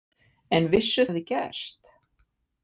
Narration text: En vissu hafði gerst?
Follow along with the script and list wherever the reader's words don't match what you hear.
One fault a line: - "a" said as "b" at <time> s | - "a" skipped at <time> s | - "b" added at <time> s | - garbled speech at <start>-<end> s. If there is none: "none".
none